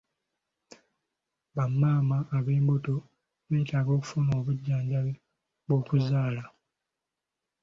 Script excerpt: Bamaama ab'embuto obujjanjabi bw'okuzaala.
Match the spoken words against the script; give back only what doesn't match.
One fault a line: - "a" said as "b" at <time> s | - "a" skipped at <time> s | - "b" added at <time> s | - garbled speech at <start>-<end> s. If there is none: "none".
- "beetaaga okufuna" added at 3.5 s